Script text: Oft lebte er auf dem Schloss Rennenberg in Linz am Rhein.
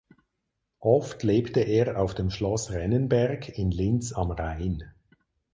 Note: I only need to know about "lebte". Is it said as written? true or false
true